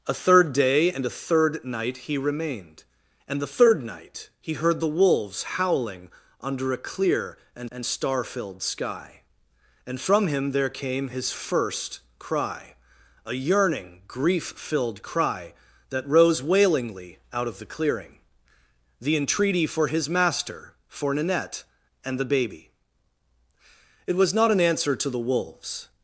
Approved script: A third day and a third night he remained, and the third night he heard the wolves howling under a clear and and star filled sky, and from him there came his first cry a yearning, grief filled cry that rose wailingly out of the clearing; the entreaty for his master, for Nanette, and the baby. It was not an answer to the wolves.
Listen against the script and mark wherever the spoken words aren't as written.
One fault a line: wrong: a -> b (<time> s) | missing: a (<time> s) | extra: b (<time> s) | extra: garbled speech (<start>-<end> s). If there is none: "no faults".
no faults